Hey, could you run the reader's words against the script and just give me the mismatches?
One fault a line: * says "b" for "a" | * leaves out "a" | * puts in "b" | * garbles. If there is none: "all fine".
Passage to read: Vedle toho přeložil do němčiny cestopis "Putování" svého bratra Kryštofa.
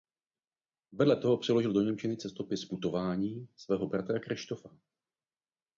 all fine